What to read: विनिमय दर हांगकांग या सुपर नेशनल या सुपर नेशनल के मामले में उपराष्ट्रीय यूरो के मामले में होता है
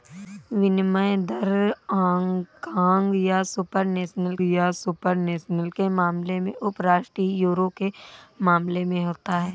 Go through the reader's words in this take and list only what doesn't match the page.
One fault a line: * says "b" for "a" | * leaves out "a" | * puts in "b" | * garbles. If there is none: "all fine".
all fine